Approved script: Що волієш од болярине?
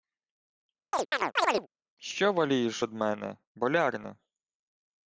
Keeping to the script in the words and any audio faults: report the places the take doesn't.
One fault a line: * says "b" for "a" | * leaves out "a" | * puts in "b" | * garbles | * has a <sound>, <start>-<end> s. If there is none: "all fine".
* has a chirp, 0.9-1.7 s
* puts in "мене"